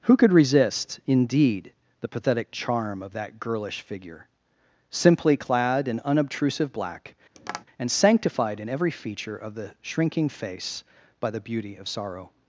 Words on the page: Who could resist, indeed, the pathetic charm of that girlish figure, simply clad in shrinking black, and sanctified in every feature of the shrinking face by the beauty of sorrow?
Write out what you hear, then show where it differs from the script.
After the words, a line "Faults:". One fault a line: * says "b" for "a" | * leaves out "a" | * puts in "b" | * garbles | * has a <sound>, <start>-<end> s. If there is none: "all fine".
Who could resist, indeed, the pathetic charm of that girlish figure, simply clad in unobtrusive black, and sanctified in every feature of the shrinking face by the beauty of sorrow?
Faults:
* says "unobtrusive" for "shrinking"
* has a tap, 7.4-7.7 s